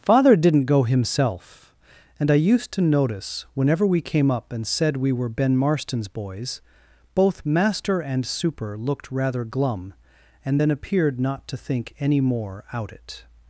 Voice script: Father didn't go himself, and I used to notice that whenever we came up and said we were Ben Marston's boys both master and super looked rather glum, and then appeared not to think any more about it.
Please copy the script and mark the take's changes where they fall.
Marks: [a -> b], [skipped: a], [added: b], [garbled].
Father didn't go himself, and I used to notice [skipped: that] whenever we came up and said we were Ben Marston's boys both master and super looked rather glum, and then appeared not to think any more [about -> out] it.